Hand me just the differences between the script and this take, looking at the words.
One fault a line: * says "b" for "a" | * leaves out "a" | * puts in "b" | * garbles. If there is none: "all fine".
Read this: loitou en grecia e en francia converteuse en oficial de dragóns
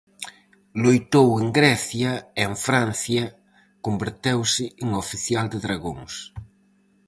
all fine